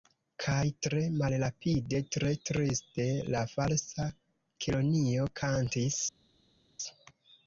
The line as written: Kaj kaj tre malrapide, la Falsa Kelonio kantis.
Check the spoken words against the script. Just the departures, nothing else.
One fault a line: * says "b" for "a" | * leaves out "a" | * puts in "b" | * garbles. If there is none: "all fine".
* says "tre malrapide" for "kaj"
* says "triste" for "malrapide"